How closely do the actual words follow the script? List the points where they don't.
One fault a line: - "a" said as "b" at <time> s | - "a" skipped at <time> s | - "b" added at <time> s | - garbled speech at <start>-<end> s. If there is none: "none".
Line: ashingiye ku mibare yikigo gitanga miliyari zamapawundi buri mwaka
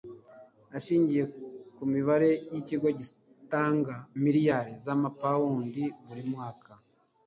none